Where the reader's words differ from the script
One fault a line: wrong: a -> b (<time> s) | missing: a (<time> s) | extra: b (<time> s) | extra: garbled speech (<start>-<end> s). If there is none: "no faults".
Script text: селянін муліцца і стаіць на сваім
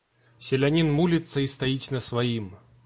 no faults